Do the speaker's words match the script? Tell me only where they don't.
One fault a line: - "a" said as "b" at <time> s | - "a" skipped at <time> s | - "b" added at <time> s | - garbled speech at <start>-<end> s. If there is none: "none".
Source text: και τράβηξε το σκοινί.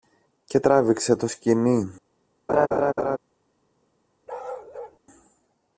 none